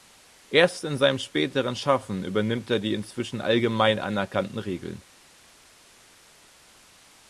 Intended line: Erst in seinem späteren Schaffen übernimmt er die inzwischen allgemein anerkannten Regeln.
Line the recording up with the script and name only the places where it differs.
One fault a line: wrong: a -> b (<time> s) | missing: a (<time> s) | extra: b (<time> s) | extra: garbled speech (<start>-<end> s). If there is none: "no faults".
no faults